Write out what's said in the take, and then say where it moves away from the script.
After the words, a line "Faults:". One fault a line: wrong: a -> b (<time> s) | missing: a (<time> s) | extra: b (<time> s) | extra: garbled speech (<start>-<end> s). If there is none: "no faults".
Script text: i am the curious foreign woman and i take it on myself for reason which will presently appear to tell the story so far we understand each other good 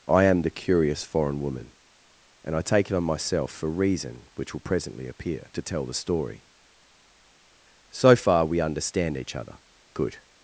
i am the curious foreign woman and i take it on myself for reason which will presently appear to tell the story so far we understand each other good
Faults:
no faults